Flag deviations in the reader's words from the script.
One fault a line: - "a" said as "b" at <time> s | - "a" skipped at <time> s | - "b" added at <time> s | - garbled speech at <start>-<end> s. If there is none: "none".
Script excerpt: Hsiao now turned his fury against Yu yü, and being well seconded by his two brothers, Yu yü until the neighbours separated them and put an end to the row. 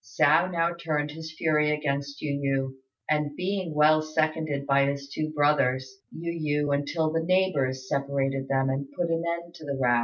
none